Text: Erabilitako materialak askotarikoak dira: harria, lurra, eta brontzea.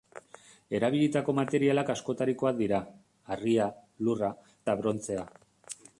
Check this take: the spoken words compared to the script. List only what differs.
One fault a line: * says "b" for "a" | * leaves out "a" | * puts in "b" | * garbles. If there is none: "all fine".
all fine